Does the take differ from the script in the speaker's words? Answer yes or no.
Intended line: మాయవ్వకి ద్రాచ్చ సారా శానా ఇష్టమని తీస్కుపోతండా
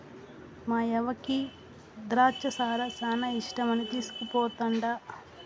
no